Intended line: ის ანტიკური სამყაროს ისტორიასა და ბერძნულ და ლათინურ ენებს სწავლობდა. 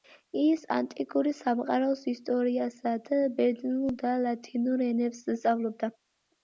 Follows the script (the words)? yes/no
yes